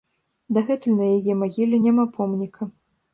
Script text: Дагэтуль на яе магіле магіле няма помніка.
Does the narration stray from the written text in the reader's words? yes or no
yes